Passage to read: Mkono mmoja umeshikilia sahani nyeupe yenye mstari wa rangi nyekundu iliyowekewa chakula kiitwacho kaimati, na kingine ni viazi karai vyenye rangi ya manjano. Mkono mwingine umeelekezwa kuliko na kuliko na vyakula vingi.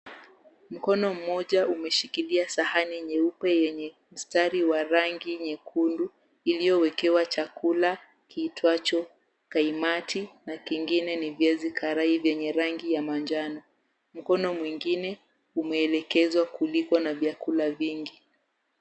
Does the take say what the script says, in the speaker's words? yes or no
no